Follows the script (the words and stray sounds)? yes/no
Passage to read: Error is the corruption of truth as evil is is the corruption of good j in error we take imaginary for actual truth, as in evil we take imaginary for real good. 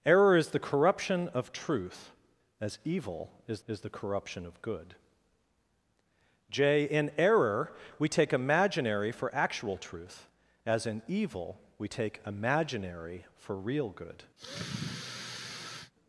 no